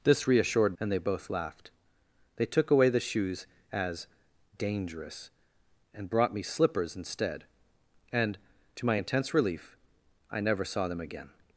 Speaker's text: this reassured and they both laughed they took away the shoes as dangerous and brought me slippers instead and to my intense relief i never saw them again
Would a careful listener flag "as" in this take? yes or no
no